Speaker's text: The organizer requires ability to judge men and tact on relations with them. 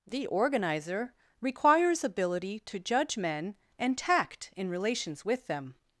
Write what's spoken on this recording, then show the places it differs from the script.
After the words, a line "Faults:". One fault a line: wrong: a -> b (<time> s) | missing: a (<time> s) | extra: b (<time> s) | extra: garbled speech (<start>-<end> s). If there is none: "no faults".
The organizer requires ability to judge men and tact in relations with them.
Faults:
wrong: on -> in (4.5 s)